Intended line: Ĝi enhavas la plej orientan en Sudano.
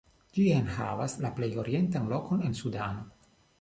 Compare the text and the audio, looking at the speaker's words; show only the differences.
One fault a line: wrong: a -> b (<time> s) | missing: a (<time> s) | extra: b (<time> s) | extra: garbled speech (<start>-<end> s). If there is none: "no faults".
extra: lokon (2.2 s)